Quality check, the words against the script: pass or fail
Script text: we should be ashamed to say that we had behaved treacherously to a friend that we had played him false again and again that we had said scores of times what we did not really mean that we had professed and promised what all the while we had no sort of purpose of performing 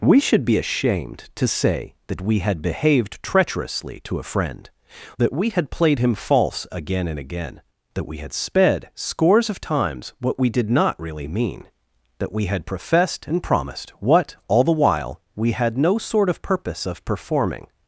fail